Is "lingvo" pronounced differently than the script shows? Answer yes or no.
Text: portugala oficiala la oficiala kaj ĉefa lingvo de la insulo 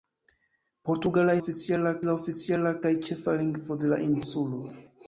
no